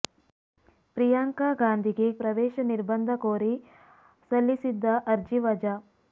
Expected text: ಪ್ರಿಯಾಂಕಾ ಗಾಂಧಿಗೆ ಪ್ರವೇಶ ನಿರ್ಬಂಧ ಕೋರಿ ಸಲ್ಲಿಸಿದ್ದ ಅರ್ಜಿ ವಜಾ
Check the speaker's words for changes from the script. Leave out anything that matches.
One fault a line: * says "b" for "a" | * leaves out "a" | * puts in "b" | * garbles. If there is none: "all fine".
all fine